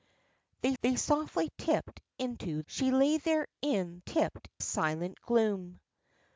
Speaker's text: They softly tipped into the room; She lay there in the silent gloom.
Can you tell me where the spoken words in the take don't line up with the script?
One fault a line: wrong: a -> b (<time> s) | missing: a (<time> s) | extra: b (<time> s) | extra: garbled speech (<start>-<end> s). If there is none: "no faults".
extra: they (0.8 s)
missing: the room (2.6 s)
wrong: the -> tipped (4.0 s)